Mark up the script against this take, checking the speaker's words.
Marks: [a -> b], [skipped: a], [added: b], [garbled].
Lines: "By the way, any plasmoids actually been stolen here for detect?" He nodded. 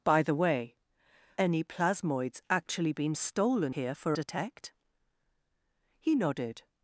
"By the way, any plasmoids actually been stolen here for detect?" He nodded.